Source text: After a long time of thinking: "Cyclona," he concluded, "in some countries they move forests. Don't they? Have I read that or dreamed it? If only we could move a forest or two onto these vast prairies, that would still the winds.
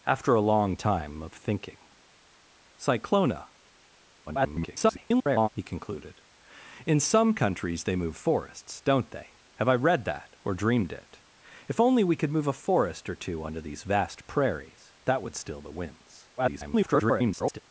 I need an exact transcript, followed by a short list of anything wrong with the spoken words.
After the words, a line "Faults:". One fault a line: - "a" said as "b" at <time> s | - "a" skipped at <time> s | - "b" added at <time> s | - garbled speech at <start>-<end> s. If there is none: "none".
After a long time of thinking: "Cyclona," [garbled] he concluded, "in some countries they move forests. Don't they? Have I read that or dreamed it? If only we could move a forest or two onto these vast prairies, that would still the winds. [garbled]
Faults:
- garbled speech at 4.3-5.5 s
- garbled speech at 16.4-17.6 s